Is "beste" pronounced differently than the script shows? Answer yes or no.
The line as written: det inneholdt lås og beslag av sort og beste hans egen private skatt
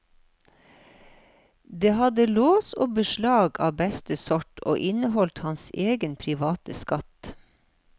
yes